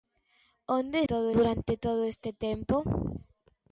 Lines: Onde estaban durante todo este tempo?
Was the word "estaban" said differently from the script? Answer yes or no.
yes